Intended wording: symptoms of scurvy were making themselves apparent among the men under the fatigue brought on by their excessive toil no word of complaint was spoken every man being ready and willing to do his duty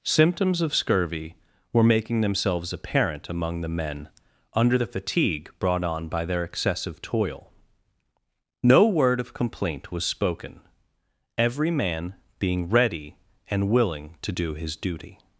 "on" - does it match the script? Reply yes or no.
yes